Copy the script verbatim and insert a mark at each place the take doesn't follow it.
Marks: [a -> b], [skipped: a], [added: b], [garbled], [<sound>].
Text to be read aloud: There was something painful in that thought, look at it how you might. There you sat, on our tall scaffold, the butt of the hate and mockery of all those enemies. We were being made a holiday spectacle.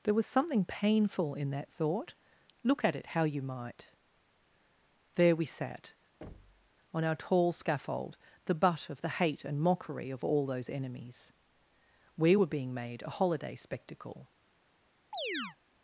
There was something painful in that thought, look at it how you might. There [you -> we] sat, [thud] on our tall scaffold, the butt of the hate and mockery of all those enemies. We were being made a holiday spectacle. [chirp]